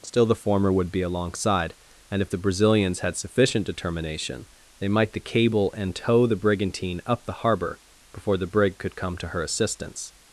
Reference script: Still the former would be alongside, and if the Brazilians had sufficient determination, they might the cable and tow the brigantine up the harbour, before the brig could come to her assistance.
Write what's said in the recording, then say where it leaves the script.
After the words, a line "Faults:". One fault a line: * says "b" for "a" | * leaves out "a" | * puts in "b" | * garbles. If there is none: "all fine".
Still the former would be alongside, and if the Brazilians had sufficient determination, they might the cable and tow the brigantine up the harbour, before the brig could come to her assistance.
Faults:
all fine